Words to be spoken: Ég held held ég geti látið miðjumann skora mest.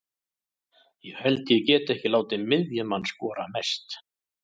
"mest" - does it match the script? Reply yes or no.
yes